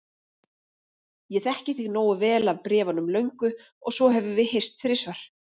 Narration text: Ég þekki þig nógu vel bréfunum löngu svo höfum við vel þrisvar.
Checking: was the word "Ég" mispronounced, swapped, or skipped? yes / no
no